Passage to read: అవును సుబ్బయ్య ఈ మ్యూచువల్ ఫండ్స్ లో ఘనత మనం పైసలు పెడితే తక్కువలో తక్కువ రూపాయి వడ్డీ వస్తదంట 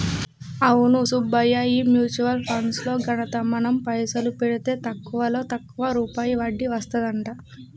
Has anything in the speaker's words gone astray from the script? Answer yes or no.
no